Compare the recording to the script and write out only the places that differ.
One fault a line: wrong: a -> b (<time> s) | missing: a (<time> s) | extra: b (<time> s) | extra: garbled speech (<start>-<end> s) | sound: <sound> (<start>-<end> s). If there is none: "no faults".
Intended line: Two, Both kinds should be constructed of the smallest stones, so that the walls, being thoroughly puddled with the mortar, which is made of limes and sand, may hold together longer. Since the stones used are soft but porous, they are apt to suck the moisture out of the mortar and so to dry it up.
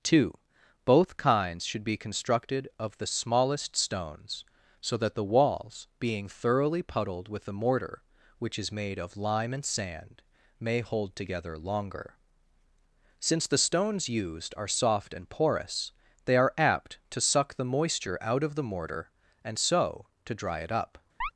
wrong: limes -> lime (9.2 s)
wrong: but -> and (15.1 s)
sound: chirp (21.2-21.3 s)